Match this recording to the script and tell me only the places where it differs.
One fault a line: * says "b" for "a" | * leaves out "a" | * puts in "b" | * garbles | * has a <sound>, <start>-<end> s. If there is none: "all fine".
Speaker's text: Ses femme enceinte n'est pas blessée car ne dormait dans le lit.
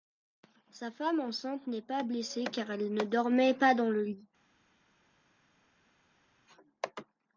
* says "Sa" for "Ses"
* puts in "elle"
* puts in "pas"